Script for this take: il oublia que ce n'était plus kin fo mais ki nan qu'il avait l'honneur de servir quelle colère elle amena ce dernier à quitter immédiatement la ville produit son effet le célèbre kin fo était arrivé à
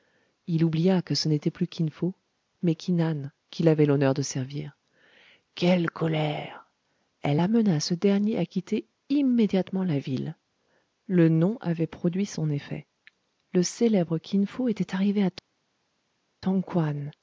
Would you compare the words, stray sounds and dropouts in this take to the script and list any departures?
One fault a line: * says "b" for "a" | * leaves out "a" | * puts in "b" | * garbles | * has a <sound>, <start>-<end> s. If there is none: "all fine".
* puts in "le nom avait"